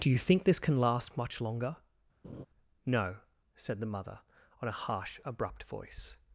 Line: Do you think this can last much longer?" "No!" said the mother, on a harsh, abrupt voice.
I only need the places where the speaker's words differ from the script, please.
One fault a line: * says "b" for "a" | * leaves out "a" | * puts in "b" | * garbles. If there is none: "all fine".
all fine